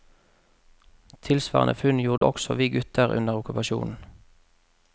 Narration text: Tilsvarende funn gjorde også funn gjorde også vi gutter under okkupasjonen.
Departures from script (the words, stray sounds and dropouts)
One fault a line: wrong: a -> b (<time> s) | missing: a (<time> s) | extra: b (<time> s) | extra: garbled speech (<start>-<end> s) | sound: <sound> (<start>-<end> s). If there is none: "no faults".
sound: dropout (2.2-2.2 s)
missing: funn gjorde også (2.5 s)